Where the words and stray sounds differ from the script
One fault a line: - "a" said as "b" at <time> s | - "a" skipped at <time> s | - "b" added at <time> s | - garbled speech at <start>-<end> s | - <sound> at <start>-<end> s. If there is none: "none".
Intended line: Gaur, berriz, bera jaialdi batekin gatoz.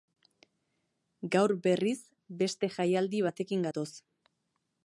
- "bera" said as "beste" at 2.4 s